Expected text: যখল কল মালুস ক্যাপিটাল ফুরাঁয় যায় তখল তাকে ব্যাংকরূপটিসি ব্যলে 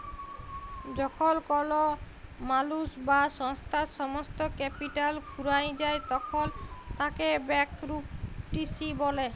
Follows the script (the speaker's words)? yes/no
no